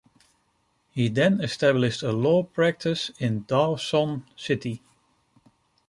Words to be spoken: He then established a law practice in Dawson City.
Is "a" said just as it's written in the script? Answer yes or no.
yes